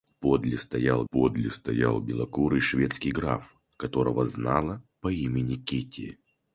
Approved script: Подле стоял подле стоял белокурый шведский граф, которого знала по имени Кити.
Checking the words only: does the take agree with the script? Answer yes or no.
yes